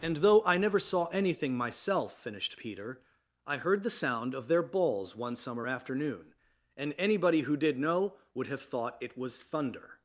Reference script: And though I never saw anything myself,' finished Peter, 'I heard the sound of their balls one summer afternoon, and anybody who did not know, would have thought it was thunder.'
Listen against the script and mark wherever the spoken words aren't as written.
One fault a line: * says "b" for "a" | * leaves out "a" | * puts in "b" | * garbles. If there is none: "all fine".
* leaves out "not"